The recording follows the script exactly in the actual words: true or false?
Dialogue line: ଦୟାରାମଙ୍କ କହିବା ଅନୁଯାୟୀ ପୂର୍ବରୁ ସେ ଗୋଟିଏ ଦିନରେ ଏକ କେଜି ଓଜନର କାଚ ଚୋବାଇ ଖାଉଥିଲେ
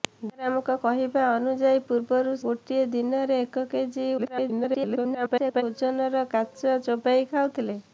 false